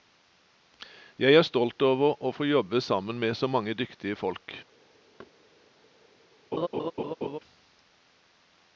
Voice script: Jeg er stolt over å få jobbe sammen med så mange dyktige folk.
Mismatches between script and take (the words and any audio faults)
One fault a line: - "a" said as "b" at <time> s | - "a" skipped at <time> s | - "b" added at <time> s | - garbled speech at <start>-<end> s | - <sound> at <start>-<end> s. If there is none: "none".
- thud at 5.2-5.3 s
- laugh at 6.5-7.4 s